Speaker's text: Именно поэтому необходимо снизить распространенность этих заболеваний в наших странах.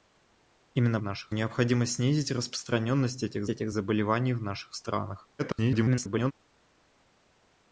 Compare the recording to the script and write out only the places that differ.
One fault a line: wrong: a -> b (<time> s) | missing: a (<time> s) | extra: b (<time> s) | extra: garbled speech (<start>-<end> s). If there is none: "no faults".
wrong: поэтому -> наших (1.0 s)
extra: этих (3.5 s)
extra: garbled speech (5.4-6.3 s)